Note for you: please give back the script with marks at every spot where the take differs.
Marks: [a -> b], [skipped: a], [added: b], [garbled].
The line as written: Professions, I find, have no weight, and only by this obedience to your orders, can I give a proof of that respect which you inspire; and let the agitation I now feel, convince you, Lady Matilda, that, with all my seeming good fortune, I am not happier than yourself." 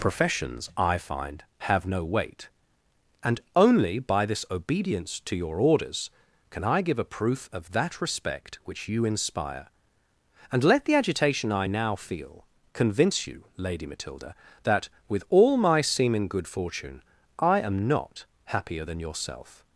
Professions, I find, have no weight, and only by this obedience to your orders, can I give a proof of that respect which you inspire; and let the agitation I now feel, convince you, Lady Matilda, that, with all my seeming good fortune, I am not happier than yourself."